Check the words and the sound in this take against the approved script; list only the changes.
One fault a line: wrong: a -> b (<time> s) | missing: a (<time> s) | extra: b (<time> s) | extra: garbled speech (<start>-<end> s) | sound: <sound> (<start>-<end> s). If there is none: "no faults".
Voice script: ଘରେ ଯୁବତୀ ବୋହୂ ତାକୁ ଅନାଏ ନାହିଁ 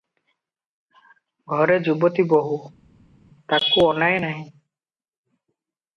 no faults